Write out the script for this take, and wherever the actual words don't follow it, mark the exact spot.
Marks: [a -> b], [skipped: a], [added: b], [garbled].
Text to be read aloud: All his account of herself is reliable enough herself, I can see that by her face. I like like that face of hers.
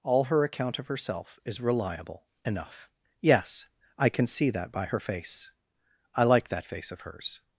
All [his -> her] account of herself is reliable enough [herself, -> yes] I can see that by her face. I like [skipped: like] that face of hers.